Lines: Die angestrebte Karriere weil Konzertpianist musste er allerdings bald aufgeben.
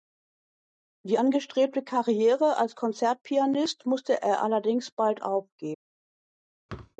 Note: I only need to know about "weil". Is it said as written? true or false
false